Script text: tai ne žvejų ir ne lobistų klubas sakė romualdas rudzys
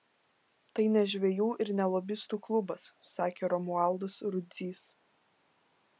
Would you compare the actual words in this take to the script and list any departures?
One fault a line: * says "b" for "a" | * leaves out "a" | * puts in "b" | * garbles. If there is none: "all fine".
all fine